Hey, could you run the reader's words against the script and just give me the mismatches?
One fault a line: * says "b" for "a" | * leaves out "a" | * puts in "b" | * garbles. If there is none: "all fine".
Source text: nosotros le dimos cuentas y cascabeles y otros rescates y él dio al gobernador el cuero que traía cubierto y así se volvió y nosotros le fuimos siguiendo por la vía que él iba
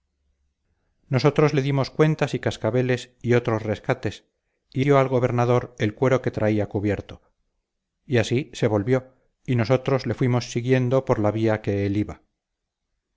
* leaves out "él"